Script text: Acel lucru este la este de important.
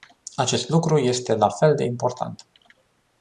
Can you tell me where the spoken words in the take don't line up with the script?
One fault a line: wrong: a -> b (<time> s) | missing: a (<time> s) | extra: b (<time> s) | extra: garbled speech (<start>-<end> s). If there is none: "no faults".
wrong: Acel -> Acest (0.3 s)
wrong: este -> fel (1.5 s)